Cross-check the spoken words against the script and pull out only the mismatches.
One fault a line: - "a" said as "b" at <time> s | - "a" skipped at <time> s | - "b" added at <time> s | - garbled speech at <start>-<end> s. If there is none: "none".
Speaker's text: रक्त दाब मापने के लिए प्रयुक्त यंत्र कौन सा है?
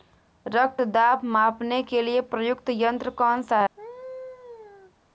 none